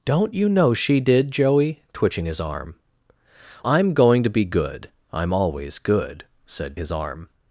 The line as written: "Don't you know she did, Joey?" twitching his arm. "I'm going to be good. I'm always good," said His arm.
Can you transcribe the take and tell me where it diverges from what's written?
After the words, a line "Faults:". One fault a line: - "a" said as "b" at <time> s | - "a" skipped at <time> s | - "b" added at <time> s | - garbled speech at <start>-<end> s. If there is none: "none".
"Don't you know she did, Joey?" twitching his arm. "I'm going to be good. I'm always good," said His arm.
Faults:
none